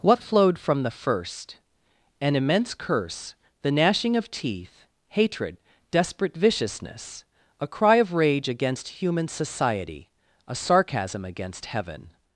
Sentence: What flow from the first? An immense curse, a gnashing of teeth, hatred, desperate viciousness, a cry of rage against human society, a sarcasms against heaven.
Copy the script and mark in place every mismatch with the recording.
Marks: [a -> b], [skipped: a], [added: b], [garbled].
What [flow -> flowed] from the first? An immense curse, [a -> the] gnashing of teeth, hatred, desperate viciousness, a cry of rage against human society, a [sarcasms -> sarcasm] against heaven.